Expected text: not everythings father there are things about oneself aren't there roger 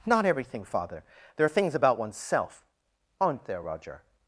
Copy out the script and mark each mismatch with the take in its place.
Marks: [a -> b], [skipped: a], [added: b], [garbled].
not [everythings -> everything] father there are things about oneself aren't there roger